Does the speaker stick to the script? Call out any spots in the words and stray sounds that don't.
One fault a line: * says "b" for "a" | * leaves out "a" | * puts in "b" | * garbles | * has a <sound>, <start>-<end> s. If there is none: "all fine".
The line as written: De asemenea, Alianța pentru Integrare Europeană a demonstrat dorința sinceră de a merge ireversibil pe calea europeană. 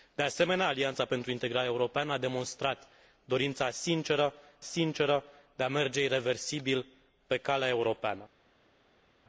* puts in "sinceră"